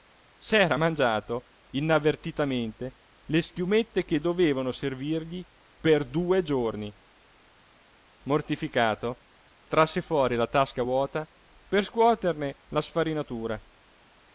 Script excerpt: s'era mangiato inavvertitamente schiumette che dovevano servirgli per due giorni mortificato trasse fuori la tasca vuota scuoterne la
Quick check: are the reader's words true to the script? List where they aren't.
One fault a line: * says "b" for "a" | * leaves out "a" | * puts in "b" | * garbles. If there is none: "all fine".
* puts in "le"
* puts in "per"